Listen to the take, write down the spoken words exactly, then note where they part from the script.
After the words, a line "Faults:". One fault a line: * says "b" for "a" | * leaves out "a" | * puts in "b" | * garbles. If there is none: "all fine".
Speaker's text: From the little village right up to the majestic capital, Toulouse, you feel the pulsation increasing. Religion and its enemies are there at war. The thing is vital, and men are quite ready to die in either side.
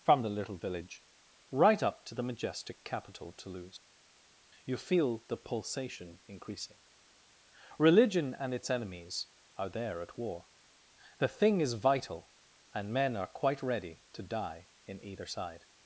From the little village right up to the majestic capital, Toulouse, you feel the pulsation increasing. Religion and its enemies are there at war. The thing is vital, and men are quite ready to die in either side.
Faults:
all fine